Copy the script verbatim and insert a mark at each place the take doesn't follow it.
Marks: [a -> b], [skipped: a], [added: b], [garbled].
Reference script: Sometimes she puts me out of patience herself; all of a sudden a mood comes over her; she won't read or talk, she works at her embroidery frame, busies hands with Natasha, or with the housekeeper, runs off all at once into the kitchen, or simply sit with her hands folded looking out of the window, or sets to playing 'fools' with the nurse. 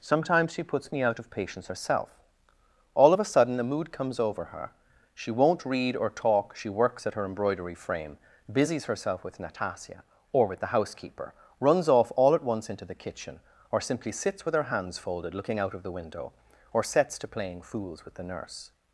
Sometimes she puts me out of patience herself; all of a sudden a mood comes over her; she won't read or talk, she works at her embroidery frame, busies [hands -> herself] with Natasha, or with the housekeeper, runs off all at once into the kitchen, or simply [sit -> sits] with her hands folded looking out of the window, or sets to playing 'fools' with the nurse.